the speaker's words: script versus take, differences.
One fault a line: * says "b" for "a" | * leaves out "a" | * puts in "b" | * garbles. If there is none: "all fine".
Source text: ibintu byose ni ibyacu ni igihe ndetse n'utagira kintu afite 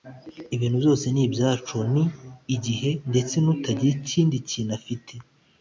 * puts in "ikindi"